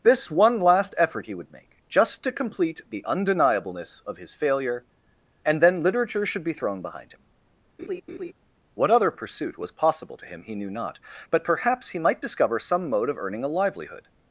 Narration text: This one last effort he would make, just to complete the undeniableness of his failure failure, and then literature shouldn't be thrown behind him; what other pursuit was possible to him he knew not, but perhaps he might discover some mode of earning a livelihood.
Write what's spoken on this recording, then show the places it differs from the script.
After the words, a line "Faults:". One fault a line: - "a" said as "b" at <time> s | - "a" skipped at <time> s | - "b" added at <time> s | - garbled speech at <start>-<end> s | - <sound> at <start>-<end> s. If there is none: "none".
This one last effort he would make, just to complete the undeniableness of his failure, and then literature should be thrown behind him; what other pursuit was possible to him he knew not, but perhaps he might discover some mode of earning a livelihood.
Faults:
- "failure" skipped at 4.9 s
- "shouldn't" said as "should" at 6.2 s
- laugh at 7.8-8.3 s